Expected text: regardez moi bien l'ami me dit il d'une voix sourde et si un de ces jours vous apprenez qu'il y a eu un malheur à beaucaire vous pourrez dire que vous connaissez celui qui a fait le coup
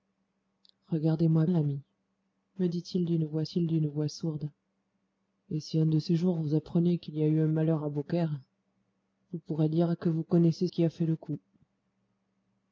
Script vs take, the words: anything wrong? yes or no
yes